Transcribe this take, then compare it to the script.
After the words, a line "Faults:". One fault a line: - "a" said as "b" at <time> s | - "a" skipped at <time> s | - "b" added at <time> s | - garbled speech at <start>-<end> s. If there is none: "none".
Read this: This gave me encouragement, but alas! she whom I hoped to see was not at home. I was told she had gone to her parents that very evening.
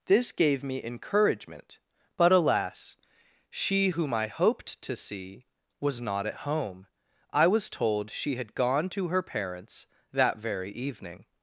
This gave me encouragement, but alas! she whom I hoped to see was not at home. I was told she had gone to her parents that very evening.
Faults:
none